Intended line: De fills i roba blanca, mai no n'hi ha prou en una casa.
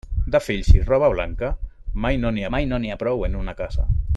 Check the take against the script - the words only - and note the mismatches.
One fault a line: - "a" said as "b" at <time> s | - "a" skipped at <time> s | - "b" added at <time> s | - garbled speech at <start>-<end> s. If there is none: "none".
- "mai no n'hi" added at 2.6 s